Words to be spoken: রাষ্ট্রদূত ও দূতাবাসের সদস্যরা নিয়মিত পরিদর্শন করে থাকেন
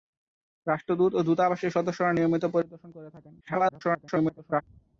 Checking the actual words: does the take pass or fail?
fail